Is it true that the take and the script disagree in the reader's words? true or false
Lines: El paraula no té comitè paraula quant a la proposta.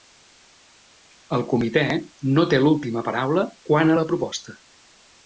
true